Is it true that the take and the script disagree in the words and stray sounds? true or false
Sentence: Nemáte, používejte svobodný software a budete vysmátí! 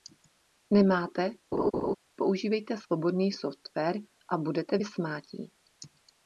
true